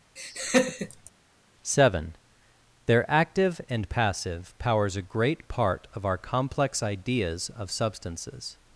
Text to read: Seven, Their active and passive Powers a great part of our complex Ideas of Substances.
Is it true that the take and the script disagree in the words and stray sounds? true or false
true